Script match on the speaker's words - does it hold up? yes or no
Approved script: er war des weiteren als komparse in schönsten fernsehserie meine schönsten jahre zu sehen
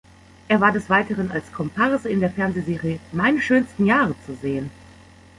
no